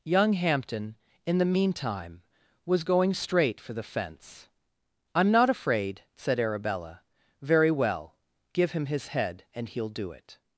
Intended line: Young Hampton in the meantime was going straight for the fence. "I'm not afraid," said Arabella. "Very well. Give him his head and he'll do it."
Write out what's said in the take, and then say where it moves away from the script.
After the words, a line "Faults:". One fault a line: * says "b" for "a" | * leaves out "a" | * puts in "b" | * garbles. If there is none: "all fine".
Young Hampton in the meantime was going straight for the fence. "I'm not afraid," said Arabella. "Very well. Give him his head and he'll do it."
Faults:
all fine